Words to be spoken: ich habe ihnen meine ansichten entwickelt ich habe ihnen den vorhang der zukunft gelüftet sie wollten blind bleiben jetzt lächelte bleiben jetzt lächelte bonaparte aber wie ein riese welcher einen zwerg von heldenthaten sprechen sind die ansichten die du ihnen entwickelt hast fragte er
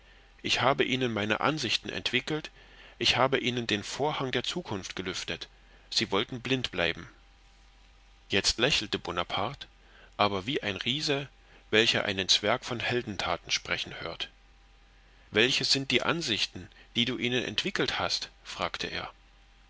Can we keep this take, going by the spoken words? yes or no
no